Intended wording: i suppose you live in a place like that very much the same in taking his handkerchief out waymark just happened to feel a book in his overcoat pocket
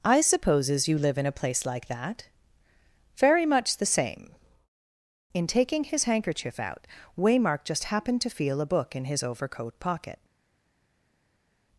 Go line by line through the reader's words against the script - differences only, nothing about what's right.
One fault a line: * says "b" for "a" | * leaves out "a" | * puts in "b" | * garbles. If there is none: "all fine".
* says "supposes" for "suppose"